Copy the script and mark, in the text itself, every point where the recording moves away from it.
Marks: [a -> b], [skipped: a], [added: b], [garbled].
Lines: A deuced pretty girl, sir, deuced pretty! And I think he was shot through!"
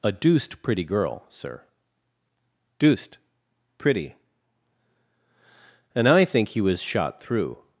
A deuced pretty girl, sir, deuced pretty! And I think he was shot through!"